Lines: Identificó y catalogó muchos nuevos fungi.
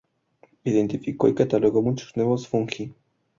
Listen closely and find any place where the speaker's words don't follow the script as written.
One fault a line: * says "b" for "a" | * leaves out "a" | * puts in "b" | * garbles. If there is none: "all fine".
all fine